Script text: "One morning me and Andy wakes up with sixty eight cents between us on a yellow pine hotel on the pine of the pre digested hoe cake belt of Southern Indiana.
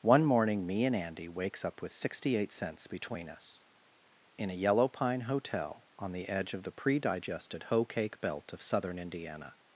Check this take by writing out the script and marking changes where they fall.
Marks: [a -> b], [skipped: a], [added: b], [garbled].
"One morning me and Andy wakes up with sixty eight cents between us [on -> in] a yellow pine hotel on the [pine -> edge] of the pre digested hoe cake belt of Southern Indiana.